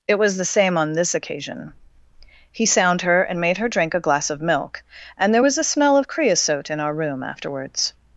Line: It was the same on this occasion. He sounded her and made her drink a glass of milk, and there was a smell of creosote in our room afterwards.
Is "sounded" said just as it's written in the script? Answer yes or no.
no